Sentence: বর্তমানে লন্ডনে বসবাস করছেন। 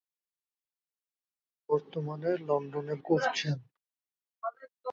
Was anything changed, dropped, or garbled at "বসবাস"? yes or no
yes